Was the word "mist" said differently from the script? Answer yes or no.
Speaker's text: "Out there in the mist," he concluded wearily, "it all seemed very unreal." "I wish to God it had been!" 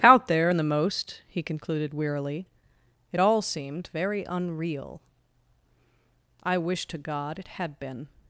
yes